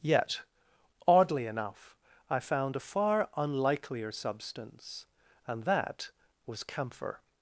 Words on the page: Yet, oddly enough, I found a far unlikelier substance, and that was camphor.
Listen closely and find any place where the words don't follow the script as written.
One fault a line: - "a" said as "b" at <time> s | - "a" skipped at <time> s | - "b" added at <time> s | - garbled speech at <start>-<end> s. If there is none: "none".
none